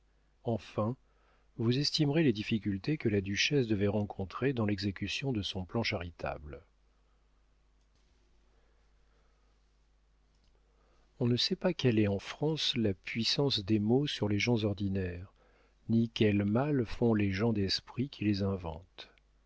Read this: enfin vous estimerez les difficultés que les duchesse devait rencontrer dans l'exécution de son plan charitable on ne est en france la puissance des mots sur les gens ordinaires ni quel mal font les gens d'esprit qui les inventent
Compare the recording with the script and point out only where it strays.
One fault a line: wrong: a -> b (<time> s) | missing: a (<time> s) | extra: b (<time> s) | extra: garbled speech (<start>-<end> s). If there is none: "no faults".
wrong: les -> la (3.1 s)
extra: sait pas quelle (11.4 s)